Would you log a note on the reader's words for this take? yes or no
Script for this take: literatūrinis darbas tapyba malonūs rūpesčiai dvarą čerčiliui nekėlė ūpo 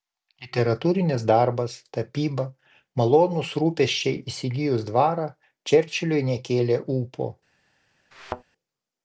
yes